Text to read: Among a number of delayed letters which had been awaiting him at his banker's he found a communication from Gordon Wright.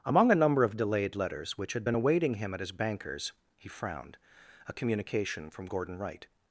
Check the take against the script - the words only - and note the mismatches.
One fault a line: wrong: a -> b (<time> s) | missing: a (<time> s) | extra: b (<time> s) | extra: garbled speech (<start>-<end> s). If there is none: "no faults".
wrong: found -> frowned (3.7 s)